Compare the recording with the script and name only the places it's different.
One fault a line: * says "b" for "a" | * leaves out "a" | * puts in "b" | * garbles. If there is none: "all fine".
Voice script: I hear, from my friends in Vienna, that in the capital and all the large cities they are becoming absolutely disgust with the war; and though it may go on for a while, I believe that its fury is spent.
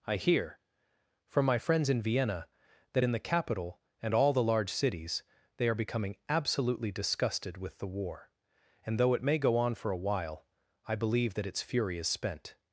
* says "disgusted" for "disgust"